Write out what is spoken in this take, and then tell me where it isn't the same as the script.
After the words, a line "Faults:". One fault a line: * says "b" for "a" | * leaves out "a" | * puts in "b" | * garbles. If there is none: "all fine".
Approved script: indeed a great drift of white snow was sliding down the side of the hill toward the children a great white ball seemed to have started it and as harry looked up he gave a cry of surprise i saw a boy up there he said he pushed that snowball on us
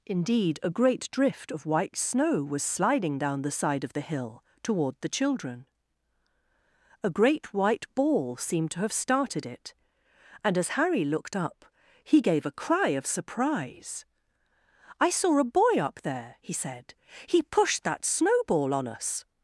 indeed a great drift of white snow was sliding down the side of the hill toward the children a great white ball seemed to have started it and as harry looked up he gave a cry of surprise i saw a boy up there he said he pushed that snowball on us
Faults:
all fine